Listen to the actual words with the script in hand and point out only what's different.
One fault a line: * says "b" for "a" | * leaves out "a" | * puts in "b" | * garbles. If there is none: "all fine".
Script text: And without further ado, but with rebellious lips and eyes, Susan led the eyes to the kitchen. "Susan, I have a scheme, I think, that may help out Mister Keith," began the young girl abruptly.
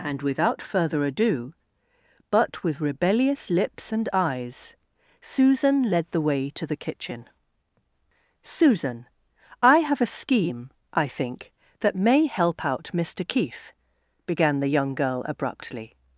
* says "way" for "eyes"